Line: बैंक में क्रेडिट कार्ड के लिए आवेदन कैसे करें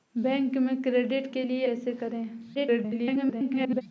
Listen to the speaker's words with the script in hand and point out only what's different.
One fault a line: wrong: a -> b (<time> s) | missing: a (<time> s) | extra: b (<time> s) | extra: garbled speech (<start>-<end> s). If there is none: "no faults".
missing: कार्ड (1.4 s)
missing: आवेदन (1.7 s)
extra: garbled speech (2.5-3.8 s)